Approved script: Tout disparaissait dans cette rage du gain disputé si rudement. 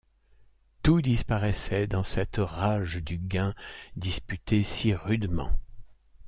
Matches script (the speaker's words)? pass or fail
pass